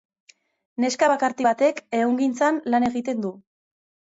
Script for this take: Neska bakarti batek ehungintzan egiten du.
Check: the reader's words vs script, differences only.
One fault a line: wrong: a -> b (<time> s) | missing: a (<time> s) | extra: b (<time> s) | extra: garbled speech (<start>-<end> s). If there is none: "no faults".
extra: lan (2.8 s)